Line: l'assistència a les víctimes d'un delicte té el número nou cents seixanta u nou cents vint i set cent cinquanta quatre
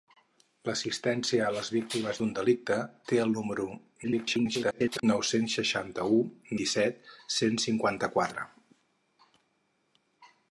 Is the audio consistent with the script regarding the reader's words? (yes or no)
no